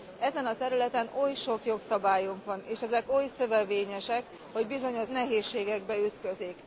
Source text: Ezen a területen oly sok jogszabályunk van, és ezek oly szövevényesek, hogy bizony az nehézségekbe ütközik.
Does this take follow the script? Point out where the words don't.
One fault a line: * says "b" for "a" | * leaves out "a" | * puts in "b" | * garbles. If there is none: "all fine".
all fine